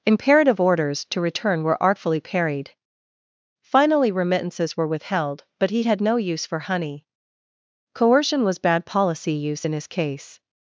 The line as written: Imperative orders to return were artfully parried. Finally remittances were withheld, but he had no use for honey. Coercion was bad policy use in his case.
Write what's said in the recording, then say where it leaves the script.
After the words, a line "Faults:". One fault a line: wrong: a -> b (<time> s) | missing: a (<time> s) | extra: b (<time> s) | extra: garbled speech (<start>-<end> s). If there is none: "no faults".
Imperative orders to return were artfully parried. Finally remittances were withheld, but he had no use for honey. Coercion was bad policy use in his case.
Faults:
no faults